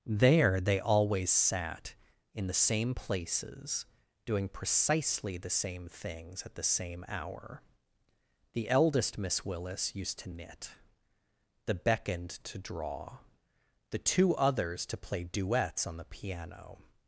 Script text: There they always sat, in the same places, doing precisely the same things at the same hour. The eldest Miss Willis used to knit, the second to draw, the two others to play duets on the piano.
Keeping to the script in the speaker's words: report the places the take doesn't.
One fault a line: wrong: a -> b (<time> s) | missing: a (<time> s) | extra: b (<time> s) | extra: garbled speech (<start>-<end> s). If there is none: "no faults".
wrong: second -> beckoned (11.7 s)